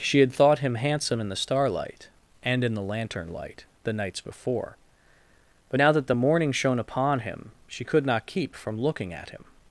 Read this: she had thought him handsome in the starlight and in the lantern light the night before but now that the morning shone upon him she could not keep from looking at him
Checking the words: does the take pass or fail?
fail